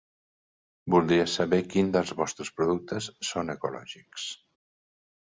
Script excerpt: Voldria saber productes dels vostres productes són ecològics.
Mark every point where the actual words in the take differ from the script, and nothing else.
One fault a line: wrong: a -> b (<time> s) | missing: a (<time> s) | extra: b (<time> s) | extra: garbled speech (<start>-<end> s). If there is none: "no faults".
wrong: productes -> quins (1.7 s)